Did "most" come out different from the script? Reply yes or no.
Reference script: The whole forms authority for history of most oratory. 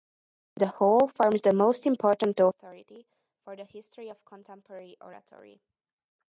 yes